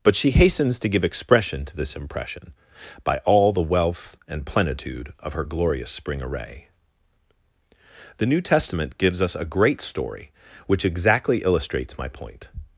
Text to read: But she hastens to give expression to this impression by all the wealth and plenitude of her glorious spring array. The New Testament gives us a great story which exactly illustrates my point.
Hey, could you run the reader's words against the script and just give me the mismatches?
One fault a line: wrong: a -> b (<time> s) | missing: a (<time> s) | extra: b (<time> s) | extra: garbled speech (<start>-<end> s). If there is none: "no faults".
no faults